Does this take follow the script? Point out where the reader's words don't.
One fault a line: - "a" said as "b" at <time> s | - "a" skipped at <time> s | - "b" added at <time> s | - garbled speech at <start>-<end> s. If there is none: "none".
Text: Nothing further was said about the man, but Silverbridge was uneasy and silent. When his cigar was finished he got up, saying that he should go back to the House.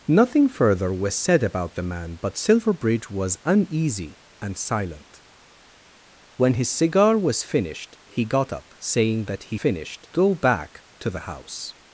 - "should" said as "finished" at 9.5 s